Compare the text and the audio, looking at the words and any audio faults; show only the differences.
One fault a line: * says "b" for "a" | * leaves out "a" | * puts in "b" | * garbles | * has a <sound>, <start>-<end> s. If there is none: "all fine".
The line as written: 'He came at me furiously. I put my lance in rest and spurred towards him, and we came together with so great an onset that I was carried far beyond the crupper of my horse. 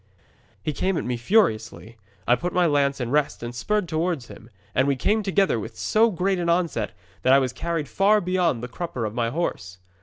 all fine